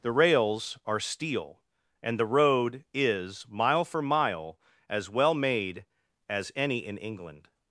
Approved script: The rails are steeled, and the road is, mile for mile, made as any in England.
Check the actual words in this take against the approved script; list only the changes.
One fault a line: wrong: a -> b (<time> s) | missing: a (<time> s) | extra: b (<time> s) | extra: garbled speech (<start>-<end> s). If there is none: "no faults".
wrong: steeled -> steel (1.0 s)
extra: as well (4.9 s)